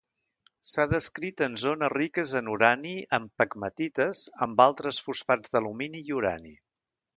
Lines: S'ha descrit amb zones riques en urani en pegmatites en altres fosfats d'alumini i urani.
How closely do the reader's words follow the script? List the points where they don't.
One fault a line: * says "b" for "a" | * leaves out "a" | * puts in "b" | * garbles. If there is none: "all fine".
* says "en" for "amb"
* says "amb" for "en"